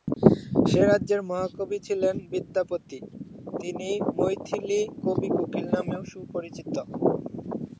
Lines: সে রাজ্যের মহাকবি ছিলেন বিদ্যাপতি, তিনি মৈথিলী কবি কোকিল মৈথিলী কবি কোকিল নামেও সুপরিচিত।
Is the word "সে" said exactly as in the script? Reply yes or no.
yes